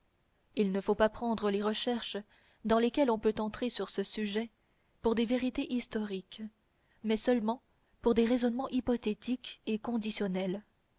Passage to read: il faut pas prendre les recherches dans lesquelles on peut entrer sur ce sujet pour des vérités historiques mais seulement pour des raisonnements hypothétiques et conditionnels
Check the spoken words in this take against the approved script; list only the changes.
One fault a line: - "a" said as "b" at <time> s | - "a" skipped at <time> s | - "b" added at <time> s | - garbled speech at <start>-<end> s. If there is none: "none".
- "ne" added at 0.7 s